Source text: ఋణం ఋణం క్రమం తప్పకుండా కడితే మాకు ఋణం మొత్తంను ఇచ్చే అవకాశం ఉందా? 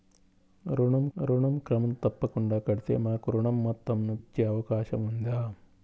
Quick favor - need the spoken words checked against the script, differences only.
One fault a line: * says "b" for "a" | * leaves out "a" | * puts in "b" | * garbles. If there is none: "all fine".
all fine